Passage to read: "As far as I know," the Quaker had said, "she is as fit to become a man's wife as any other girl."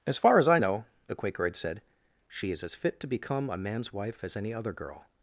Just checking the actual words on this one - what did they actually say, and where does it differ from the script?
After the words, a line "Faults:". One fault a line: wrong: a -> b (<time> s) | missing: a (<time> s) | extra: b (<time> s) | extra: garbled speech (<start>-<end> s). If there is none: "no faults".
"As far as I know," the Quaker had said, "she is as fit to become a man's wife as any other girl."
Faults:
no faults